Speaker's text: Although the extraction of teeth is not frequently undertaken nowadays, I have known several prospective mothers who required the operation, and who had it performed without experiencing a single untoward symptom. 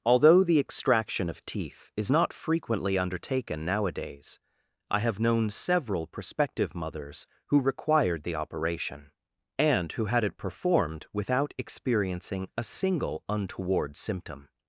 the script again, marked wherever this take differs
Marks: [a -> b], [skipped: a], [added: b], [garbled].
Although the extraction of teeth is not frequently undertaken nowadays, I have known several prospective mothers who required the operation, and who had it performed without experiencing a single untoward symptom.